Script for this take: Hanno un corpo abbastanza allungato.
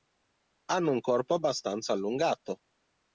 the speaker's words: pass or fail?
pass